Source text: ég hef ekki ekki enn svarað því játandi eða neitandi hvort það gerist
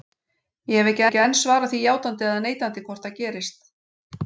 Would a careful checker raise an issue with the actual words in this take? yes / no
no